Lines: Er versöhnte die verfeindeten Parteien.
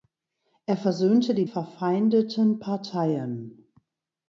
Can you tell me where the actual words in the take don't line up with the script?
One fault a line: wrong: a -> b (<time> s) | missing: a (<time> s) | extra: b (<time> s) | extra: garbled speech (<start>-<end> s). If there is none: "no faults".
no faults